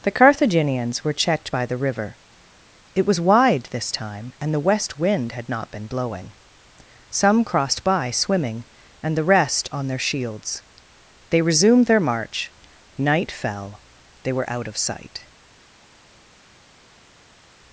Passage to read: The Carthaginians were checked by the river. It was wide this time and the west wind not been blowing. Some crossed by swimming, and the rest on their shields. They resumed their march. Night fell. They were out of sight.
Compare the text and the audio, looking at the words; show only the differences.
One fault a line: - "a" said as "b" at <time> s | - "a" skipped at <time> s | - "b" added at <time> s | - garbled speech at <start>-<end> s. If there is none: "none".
- "had" added at 5.3 s